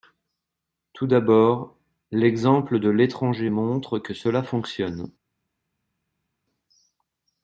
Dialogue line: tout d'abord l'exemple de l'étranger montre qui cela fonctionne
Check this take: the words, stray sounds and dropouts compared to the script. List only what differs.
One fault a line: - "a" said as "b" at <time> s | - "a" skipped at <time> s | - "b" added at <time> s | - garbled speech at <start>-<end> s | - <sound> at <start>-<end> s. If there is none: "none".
- "qui" said as "que" at 4.0 s